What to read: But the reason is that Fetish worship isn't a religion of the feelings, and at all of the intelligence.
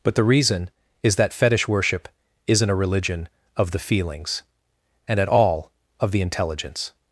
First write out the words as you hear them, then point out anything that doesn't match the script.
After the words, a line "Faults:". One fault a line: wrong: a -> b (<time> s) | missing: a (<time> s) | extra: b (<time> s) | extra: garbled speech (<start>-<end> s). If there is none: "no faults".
But the reason is that Fetish worship isn't a religion of the feelings, and at all of the intelligence.
Faults:
no faults